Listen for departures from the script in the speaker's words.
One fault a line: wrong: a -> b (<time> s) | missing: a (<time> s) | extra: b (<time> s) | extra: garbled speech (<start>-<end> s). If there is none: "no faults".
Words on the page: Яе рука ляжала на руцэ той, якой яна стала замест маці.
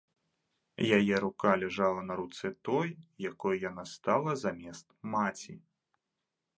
no faults